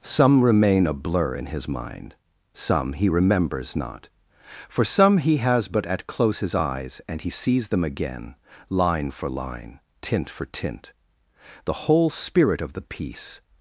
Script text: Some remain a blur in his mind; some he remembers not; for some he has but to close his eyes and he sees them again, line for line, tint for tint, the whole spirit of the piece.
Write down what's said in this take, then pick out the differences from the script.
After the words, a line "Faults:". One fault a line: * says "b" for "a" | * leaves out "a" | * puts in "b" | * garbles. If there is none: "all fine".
Some remain a blur in his mind; some he remembers not; for some he has but at close his eyes and he sees them again, line for line, tint for tint, the whole spirit of the piece.
Faults:
* says "at" for "to"